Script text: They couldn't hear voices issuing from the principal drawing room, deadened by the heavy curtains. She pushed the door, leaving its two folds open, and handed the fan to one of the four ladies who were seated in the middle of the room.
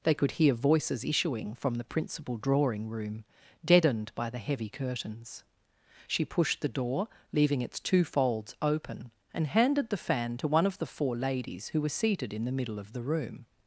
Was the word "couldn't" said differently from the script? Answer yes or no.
yes